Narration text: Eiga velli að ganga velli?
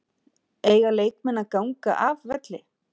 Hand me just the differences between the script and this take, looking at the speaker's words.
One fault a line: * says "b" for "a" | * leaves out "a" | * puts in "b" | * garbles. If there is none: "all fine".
* says "leikmenn" for "velli"
* puts in "af"